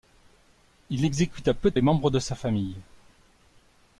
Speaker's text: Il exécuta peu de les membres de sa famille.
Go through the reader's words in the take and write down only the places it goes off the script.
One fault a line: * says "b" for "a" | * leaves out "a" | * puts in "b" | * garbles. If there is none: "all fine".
all fine